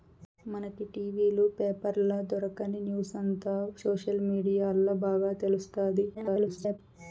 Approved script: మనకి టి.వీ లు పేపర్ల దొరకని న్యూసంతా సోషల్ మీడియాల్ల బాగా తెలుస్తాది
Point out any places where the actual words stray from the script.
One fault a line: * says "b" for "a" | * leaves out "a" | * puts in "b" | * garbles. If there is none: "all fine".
* garbles